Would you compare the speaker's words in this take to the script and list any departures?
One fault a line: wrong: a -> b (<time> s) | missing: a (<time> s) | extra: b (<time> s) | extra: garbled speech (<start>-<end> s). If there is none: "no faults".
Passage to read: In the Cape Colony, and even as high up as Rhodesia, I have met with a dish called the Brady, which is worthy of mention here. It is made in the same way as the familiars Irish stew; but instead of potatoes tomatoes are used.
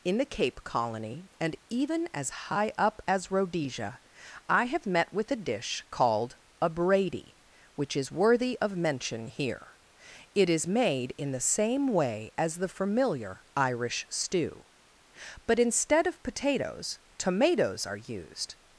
wrong: the -> a (6.6 s)
wrong: familiars -> familiar (12.7 s)